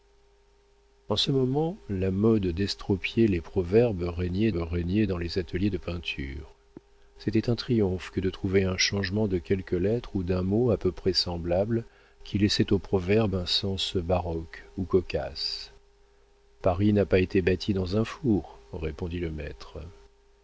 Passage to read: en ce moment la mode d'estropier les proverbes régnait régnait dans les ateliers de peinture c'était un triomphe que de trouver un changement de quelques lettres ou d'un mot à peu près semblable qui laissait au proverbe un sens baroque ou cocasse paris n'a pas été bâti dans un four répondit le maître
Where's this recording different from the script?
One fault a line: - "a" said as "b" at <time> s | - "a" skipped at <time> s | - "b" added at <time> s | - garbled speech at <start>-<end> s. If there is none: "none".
none